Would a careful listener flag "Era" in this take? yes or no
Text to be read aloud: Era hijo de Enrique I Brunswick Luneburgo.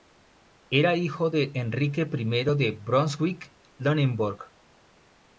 no